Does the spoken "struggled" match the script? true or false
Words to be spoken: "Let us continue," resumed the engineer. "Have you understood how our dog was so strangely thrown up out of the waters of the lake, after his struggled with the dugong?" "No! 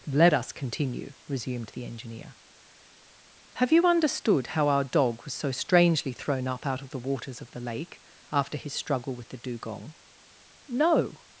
false